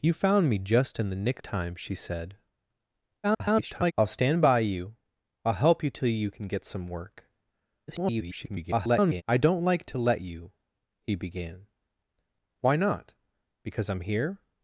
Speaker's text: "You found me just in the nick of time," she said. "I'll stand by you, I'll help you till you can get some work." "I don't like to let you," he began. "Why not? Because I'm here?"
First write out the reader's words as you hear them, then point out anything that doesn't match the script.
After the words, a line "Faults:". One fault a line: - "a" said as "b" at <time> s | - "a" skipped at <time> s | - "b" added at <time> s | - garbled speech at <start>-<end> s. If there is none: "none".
"You found me just in the nick time," she said. [garbled] "I'll stand by you, I'll help you till you can get some work." [garbled] "I don't like to let you," he began. "Why not? Because I'm here?"
Faults:
- "of" skipped at 1.4 s
- garbled speech at 3.2-3.9 s
- garbled speech at 7.9-9.2 s